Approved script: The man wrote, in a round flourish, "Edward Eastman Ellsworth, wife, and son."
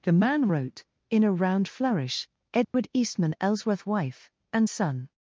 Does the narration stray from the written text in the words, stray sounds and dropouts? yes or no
yes